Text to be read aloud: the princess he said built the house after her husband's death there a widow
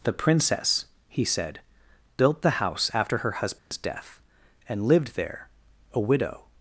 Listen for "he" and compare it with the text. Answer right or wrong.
right